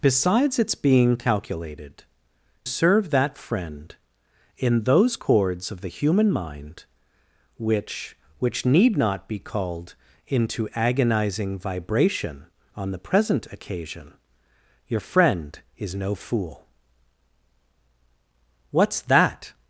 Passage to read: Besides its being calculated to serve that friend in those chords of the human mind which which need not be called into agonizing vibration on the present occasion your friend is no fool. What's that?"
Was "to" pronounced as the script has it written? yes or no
no